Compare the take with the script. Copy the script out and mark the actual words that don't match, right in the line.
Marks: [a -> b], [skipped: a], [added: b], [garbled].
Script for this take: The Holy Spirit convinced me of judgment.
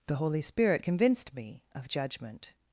The Holy Spirit convinced me of judgment.